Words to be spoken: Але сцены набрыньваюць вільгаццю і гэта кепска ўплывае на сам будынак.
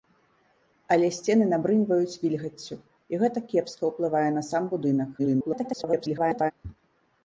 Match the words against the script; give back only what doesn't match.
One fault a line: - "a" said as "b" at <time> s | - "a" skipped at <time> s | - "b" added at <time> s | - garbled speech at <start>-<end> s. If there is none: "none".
- garbled speech at 5.2-6.5 s